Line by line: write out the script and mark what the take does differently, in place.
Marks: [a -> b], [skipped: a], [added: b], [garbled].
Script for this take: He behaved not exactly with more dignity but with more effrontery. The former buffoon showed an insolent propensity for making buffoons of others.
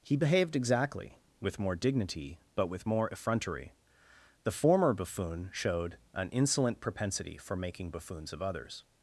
He behaved [skipped: not] exactly with more dignity but with more effrontery. The former buffoon showed an insolent propensity for making buffoons of others.